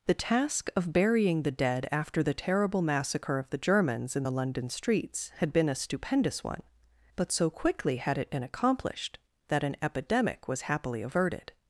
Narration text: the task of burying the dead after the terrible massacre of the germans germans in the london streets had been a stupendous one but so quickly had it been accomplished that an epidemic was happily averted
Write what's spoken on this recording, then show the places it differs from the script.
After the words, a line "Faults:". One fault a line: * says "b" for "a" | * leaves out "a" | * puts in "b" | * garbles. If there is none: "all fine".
the task of burying the dead after the terrible massacre of the germans in the london streets had been a stupendous one but so quickly had it been accomplished that an epidemic was happily averted
Faults:
* leaves out "germans"